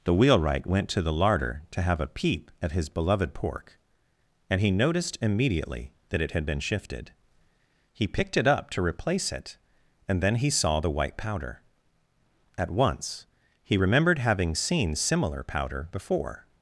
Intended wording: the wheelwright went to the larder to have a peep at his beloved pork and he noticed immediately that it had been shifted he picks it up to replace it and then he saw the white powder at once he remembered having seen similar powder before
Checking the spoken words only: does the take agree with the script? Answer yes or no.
no